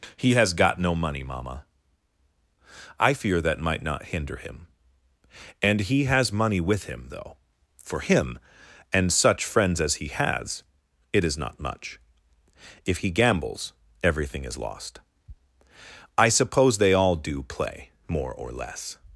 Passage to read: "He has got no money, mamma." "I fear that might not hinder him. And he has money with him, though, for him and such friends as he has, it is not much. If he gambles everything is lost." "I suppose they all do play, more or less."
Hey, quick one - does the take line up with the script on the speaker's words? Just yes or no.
yes